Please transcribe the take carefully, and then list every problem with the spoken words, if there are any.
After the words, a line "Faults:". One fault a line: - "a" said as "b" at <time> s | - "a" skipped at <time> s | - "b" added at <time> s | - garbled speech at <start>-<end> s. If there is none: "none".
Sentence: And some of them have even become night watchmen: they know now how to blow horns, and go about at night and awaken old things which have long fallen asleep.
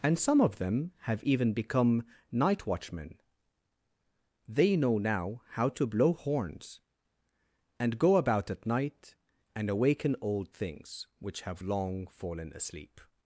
And some of them have even become night watchmen: they know now how to blow horns, and go about at night and awaken old things which have long fallen asleep.
Faults:
none